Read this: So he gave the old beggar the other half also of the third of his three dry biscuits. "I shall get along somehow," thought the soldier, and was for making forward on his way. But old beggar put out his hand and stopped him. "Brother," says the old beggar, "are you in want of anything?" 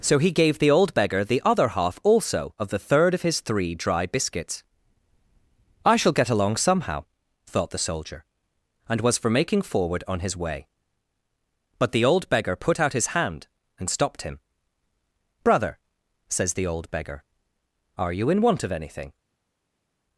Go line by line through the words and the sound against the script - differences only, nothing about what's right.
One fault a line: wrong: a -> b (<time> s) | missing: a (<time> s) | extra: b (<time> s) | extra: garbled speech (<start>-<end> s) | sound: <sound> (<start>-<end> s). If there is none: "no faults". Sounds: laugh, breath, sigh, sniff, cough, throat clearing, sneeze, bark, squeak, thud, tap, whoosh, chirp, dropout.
extra: the (11.9 s)